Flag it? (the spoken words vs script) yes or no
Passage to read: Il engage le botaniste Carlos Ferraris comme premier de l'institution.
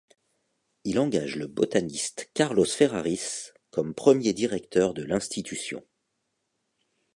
yes